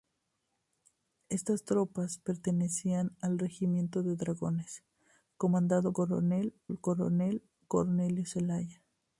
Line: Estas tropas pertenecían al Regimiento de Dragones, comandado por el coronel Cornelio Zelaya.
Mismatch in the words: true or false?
true